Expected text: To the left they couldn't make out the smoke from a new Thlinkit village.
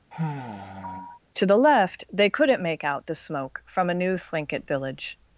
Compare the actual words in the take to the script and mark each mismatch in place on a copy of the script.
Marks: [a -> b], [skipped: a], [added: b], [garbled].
To the left they couldn't make out the smoke from a new Thlinkit village.